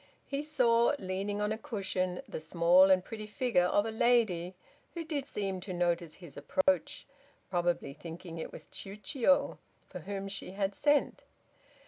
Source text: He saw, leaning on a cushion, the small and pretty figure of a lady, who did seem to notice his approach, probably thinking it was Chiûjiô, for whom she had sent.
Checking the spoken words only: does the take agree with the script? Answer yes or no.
yes